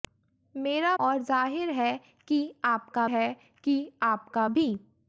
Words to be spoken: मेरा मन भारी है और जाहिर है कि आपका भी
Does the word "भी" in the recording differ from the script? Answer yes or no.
no